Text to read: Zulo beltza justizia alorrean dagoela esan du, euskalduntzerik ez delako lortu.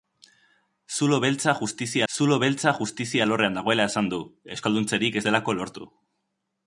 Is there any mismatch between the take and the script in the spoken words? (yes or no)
yes